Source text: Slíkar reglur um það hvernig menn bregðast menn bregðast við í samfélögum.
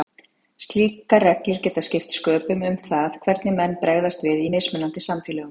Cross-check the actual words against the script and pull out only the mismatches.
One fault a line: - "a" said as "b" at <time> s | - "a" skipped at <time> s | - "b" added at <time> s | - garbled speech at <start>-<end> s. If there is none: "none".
- "geta skipt sköpum" added at 1.7 s
- "menn bregðast" skipped at 4.3 s
- "mismunandi" added at 4.6 s